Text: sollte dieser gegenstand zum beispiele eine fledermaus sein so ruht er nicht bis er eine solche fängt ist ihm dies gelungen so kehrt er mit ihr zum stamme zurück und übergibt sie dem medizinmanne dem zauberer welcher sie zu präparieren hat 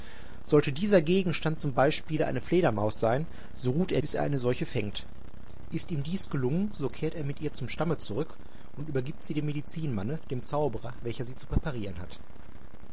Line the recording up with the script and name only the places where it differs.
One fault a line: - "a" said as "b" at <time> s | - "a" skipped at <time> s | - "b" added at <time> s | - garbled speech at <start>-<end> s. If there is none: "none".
- "nicht" skipped at 4.0 s